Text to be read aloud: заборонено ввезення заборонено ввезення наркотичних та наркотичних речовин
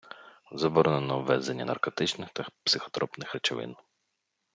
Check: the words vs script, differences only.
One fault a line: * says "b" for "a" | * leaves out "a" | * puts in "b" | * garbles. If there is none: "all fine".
* leaves out "заборонено ввезення"
* says "психотропних" for "наркотичних"